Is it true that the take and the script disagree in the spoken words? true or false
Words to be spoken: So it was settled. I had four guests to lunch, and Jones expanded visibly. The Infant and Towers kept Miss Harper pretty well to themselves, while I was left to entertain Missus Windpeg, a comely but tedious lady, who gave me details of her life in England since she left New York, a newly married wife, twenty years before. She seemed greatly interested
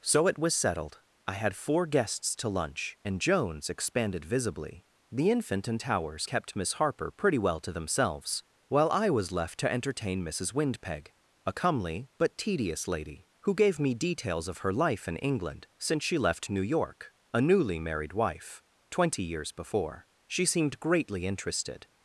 false